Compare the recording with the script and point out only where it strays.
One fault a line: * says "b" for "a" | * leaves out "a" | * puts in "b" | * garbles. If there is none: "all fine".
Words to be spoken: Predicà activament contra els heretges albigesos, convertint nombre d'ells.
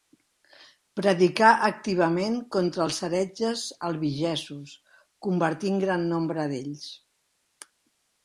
* puts in "gran"